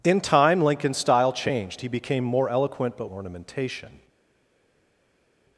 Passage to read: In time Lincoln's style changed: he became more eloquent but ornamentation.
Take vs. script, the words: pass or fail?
pass